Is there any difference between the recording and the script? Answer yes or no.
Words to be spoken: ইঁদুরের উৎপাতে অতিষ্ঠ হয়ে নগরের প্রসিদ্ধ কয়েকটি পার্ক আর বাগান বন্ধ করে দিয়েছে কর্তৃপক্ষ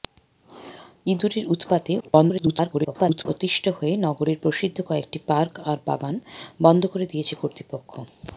yes